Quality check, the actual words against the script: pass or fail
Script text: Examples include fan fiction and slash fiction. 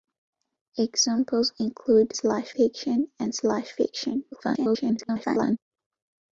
fail